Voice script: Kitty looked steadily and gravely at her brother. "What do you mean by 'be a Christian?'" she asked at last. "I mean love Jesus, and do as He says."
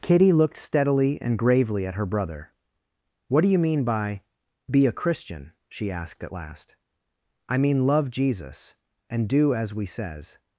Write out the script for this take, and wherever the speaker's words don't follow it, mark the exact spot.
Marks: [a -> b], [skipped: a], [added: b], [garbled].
Kitty looked steadily and gravely at her brother. "What do you mean by 'be a Christian?'" she asked at last. "I mean love Jesus, and do as [He -> We] says."